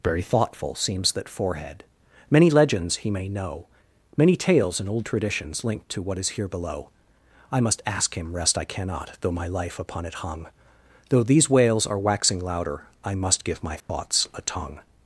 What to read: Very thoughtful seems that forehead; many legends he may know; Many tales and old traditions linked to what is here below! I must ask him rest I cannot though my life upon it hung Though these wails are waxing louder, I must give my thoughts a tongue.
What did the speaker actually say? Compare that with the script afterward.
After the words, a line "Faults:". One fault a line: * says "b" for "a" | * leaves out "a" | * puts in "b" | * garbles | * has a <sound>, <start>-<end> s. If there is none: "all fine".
Very thoughtful seems that forehead; many legends he may know; Many tales and old traditions linked to what is here below! I must ask him rest I cannot though my life upon it hung Though these wails are waxing louder, I must give my thoughts a tongue.
Faults:
* has a dropout, 13.8-13.9 s